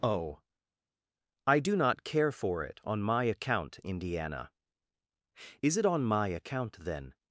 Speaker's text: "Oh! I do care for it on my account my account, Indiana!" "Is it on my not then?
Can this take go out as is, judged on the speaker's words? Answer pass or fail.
fail